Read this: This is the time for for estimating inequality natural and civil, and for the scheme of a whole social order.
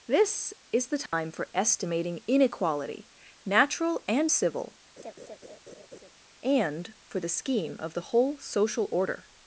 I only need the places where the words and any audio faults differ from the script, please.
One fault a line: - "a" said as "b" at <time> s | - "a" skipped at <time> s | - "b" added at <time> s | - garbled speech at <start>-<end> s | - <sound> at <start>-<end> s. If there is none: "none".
- dropout at 1.1-1.1 s
- "for" skipped at 1.5 s
- laugh at 5.0-6.1 s
- "a" said as "the" at 7.9 s